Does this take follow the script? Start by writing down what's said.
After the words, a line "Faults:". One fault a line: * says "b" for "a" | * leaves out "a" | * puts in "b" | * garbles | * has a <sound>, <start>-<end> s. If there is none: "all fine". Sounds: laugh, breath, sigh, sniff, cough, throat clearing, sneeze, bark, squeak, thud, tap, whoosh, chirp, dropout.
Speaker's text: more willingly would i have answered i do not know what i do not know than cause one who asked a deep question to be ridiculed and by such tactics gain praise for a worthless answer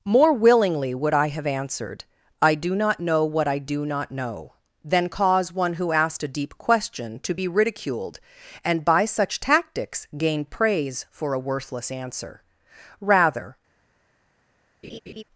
more willingly would i have answered i do not know what i do not know than cause one who asked a deep question to be ridiculed and by such tactics gain praise for a worthless answer rather
Faults:
* puts in "rather"
* has a laugh, 14.8-15.2 s